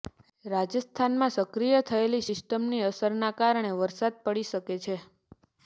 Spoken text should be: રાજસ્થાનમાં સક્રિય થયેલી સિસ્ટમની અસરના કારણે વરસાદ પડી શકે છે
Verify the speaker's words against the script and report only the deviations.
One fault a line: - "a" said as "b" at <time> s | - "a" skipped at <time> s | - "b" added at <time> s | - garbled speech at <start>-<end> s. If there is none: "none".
none